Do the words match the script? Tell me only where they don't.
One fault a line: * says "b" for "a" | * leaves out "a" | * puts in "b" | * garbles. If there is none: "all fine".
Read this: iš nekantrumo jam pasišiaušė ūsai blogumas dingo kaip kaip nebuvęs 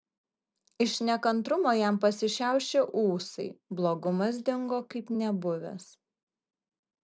* leaves out "kaip"